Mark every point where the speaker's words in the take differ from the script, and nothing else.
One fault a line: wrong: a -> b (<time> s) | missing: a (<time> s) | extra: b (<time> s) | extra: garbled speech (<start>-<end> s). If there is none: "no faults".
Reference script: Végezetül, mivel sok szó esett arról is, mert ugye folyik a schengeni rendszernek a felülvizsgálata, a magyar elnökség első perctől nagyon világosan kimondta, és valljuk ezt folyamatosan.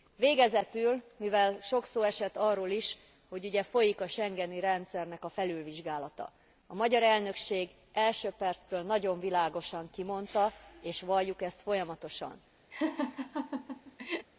wrong: mert -> hogy (3.3 s)